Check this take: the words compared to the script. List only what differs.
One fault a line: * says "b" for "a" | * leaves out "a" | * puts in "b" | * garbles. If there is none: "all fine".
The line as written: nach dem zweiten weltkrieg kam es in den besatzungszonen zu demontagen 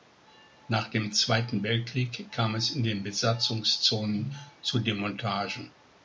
all fine